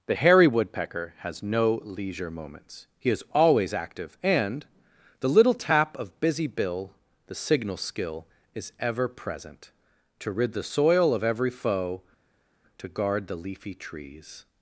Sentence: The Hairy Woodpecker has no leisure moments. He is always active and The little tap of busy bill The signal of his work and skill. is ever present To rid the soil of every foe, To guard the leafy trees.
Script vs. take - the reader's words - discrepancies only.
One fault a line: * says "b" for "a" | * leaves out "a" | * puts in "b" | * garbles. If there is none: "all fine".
* leaves out "of his work and"